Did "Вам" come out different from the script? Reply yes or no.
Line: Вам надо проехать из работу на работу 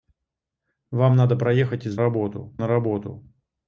no